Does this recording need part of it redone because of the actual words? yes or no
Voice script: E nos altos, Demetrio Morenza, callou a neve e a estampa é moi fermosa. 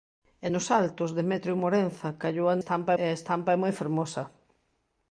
yes